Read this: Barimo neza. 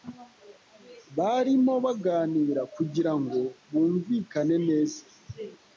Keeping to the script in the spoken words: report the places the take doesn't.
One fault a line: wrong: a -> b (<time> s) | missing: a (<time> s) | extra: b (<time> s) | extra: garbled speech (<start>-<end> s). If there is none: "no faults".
extra: baganira kugirango bumvikane (1.9 s)